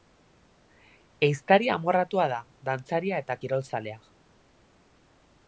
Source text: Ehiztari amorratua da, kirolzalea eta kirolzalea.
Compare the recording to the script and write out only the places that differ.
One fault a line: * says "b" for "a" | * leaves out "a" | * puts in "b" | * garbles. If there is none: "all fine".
* says "dantzaria" for "kirolzalea"